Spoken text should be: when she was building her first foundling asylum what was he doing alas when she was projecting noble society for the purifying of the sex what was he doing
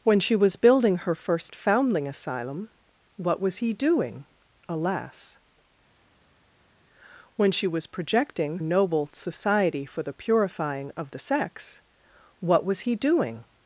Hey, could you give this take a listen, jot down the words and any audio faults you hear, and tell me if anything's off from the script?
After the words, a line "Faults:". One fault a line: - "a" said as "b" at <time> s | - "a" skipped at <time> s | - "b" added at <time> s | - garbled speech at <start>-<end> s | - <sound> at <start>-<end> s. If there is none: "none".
when she was building her first foundling asylum what was he doing alas when she was projecting noble society for the purifying of the sex what was he doing
Faults:
none